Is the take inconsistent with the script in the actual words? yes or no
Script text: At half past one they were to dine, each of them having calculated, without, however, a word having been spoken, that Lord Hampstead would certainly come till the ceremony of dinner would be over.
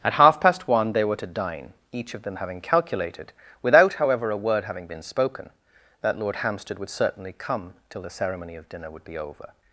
no